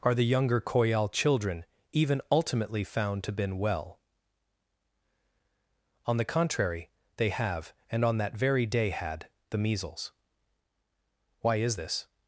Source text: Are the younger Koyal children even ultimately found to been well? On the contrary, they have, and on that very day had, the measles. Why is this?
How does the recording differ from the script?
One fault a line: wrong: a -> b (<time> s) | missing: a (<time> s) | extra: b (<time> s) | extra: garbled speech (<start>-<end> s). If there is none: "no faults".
no faults